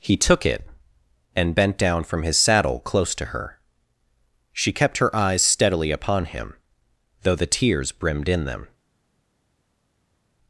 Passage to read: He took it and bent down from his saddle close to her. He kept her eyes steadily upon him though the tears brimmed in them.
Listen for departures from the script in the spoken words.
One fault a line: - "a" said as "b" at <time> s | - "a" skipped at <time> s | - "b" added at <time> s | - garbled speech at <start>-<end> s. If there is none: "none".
- "He" said as "She" at 4.5 s